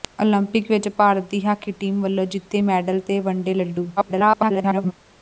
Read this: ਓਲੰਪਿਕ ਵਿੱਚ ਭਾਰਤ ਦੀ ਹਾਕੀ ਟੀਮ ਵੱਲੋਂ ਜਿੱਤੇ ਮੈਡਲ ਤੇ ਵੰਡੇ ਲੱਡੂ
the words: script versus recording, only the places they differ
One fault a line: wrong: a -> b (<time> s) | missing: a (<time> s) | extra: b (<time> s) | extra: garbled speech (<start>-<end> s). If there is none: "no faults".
extra: garbled speech (4.0-4.9 s)